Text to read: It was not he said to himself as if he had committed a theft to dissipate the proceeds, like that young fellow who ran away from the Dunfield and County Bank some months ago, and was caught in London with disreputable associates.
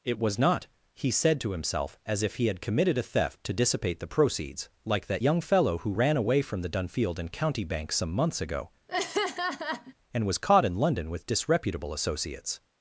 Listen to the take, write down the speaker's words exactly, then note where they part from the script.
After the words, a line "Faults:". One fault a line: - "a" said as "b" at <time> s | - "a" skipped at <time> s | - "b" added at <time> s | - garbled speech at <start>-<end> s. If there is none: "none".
It was not he said to himself as if he had committed a theft to dissipate the proceeds, like that young fellow who ran away from the Dunfield and County Bank some months ago, and was caught in London with disreputable associates.
Faults:
none